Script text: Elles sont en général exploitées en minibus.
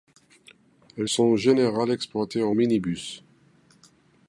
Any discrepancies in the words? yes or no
no